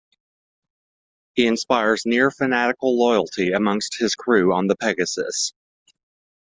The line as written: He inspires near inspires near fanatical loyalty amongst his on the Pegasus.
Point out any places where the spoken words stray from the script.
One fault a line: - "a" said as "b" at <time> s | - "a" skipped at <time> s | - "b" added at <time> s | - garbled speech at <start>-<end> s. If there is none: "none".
- "inspires near" skipped at 2.3 s
- "crew" added at 4.1 s